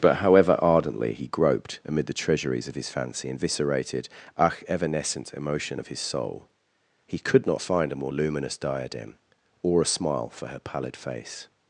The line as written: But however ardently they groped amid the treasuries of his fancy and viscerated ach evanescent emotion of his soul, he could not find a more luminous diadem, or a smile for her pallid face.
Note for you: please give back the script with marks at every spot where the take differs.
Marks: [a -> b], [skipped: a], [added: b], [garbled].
But however ardently [they -> he] groped amid the treasuries of his fancy and viscerated ach evanescent emotion of his soul, he could not find a more luminous diadem, or a smile for her pallid face.